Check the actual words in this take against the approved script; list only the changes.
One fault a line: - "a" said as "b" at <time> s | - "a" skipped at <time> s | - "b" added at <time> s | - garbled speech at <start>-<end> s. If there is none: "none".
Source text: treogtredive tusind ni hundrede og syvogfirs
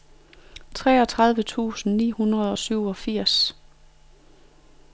none